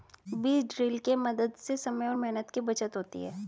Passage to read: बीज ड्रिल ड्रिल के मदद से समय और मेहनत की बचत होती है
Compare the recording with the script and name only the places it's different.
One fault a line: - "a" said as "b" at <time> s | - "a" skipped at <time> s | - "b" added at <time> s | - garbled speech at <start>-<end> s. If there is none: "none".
- "ड्रिल" skipped at 1.0 s